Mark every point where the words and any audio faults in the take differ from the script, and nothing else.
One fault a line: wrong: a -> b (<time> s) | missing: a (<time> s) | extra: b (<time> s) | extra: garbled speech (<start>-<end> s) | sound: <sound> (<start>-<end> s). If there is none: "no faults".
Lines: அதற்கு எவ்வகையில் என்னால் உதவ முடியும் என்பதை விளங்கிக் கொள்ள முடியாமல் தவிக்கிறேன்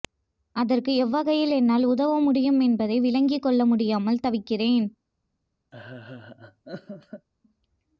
sound: laugh (5.7-7.3 s)